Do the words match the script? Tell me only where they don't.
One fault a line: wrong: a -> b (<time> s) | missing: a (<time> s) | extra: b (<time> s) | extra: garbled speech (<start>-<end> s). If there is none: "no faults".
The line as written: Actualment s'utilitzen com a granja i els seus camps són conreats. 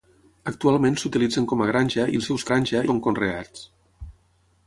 wrong: camps -> granja (2.5 s)